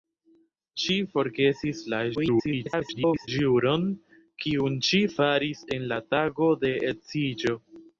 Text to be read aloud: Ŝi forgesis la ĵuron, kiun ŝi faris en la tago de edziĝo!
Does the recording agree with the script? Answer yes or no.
no